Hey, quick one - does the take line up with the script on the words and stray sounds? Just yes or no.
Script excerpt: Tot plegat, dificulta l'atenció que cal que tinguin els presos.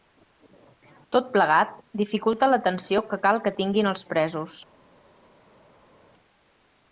yes